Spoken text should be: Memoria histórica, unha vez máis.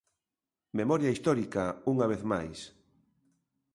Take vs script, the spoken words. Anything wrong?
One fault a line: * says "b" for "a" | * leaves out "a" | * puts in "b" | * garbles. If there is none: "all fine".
all fine